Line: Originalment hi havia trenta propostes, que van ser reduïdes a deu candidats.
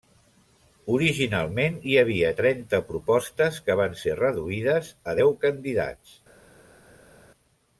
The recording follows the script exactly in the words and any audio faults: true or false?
true